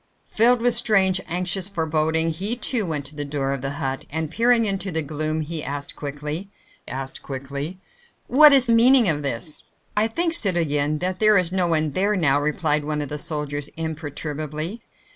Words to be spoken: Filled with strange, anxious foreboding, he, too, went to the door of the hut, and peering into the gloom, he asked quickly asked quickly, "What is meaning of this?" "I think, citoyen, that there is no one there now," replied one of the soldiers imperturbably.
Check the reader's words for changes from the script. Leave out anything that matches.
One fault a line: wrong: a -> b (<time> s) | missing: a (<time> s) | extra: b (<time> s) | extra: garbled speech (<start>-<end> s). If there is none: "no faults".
no faults